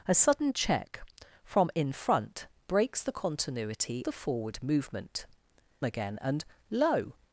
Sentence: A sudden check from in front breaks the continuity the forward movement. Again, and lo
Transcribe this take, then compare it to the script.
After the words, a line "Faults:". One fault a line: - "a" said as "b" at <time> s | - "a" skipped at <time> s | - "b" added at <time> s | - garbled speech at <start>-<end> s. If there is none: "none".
A sudden check from in front breaks the continuity the forward movement. Again, and lo
Faults:
none